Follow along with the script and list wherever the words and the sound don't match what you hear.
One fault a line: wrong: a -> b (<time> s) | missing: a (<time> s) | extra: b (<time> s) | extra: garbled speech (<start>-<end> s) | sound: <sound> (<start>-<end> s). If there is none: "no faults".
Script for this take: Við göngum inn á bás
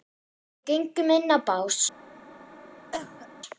sound: cough (2.9-3.3 s)